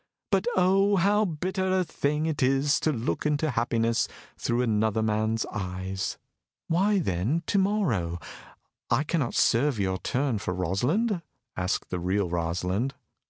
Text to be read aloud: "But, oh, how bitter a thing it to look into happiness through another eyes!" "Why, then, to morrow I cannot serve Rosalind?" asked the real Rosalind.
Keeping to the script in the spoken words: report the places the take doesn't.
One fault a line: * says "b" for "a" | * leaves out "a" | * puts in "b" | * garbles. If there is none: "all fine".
* puts in "is"
* puts in "man's"
* puts in "your turn for"